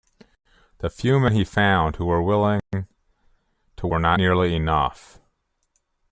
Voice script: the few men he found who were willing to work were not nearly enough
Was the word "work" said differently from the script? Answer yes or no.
yes